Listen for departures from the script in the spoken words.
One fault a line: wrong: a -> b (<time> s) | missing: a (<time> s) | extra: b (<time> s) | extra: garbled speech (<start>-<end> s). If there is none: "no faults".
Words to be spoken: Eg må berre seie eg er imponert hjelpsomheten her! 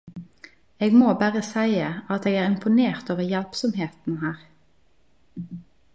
extra: at (2.1 s)
extra: over (3.1 s)